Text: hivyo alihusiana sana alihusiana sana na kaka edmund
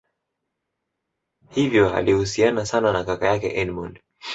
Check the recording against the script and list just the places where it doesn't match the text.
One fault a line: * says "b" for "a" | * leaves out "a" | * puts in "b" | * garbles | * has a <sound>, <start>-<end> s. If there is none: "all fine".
* leaves out "alihusiana sana"
* puts in "yake"